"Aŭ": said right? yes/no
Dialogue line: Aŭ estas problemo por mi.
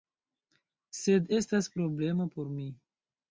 no